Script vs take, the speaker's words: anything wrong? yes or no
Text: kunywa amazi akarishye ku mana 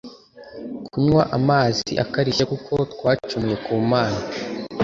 yes